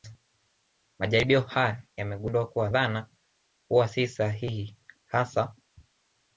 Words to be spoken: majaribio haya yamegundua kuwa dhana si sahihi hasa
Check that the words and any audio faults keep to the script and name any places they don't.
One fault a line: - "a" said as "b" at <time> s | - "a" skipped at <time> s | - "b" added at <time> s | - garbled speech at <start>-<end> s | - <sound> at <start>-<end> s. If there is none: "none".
- "huwa" added at 3.7 s